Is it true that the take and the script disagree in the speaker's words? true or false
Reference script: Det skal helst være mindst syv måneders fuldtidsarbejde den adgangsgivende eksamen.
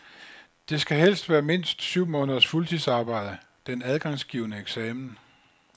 false